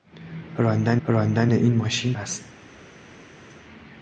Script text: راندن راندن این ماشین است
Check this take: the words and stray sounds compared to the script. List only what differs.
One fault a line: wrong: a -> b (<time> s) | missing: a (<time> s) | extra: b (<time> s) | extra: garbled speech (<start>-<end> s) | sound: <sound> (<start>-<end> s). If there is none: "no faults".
no faults